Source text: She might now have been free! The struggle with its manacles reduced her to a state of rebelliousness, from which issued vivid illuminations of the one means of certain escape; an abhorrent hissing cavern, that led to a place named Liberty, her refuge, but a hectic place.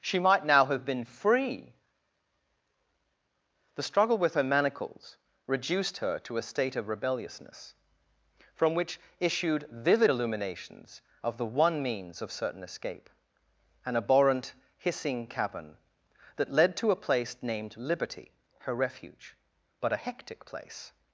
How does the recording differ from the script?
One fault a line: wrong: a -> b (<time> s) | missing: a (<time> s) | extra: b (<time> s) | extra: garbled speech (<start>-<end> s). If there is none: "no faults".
wrong: its -> her (4.3 s)